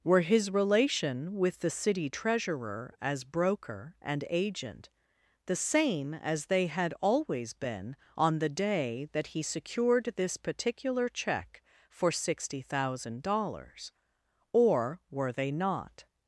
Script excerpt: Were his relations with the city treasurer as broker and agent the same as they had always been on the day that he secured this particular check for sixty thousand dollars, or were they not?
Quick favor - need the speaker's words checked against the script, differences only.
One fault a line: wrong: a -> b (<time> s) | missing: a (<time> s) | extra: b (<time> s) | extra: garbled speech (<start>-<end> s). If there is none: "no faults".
wrong: relations -> relation (0.5 s)